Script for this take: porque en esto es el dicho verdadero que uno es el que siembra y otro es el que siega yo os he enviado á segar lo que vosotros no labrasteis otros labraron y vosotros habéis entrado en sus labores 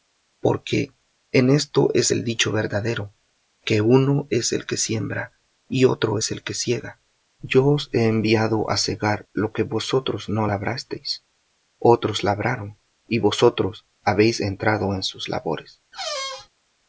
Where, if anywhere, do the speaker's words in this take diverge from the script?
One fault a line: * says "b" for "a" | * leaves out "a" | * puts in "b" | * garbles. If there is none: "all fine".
all fine